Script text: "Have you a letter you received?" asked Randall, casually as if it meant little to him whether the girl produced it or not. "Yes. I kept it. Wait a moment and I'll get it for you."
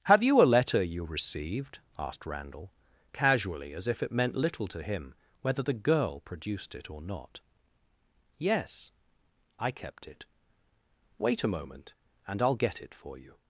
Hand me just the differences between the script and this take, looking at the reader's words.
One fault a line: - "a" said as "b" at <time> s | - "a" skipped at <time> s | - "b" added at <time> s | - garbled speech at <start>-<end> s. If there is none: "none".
none